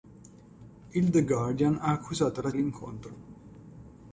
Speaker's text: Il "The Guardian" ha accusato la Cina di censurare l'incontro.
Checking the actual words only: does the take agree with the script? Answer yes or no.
no